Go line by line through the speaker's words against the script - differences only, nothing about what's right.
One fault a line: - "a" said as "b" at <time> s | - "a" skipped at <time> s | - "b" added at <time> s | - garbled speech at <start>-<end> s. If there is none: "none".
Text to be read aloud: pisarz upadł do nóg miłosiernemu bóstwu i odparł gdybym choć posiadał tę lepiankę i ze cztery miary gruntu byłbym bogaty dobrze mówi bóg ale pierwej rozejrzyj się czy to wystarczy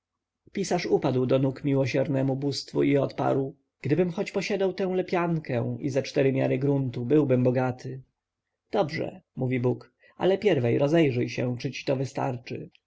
- "ci" added at 11.7 s